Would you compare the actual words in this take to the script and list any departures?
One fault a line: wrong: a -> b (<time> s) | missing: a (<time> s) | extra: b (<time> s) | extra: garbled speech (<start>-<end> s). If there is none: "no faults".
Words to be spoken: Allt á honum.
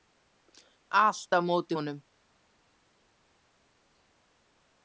extra: móti (1.5 s)